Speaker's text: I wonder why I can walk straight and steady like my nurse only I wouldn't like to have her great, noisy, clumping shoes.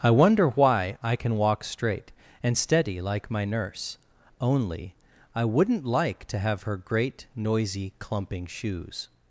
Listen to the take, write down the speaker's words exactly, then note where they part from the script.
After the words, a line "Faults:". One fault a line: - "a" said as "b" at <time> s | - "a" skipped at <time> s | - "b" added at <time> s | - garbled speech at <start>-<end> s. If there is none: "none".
I wonder why I can walk straight and steady like my nurse only I wouldn't like to have her great, noisy, clumping shoes.
Faults:
none